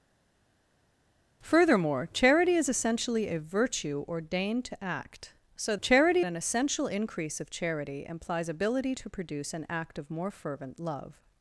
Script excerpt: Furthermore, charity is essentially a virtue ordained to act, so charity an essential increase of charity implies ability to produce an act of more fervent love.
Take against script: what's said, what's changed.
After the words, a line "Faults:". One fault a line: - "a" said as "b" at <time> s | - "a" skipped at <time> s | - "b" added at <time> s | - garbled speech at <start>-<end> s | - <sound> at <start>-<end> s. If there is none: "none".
Furthermore, charity is essentially a virtue ordained to act, so charity an essential increase of charity implies ability to produce an act of more fervent love.
Faults:
none